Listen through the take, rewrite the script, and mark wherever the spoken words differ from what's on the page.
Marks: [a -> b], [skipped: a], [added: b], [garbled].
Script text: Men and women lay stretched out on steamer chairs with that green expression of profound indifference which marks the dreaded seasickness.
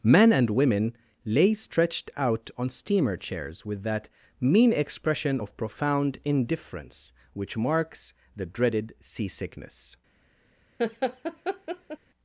Men and women lay stretched out on steamer chairs with that [green -> mean] expression of profound indifference which marks the dreaded seasickness.